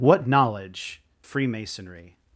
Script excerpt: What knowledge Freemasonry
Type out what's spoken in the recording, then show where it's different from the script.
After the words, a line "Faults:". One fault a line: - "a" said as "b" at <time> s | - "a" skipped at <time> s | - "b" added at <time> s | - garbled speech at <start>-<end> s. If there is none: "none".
What knowledge Freemasonry
Faults:
none